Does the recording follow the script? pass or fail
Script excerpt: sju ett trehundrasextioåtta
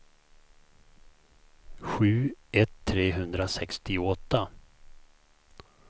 pass